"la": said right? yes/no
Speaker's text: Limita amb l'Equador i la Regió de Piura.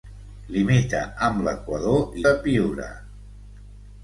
no